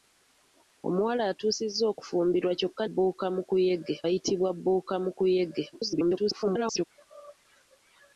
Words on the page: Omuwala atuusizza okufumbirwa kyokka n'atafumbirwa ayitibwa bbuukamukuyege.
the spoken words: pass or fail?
fail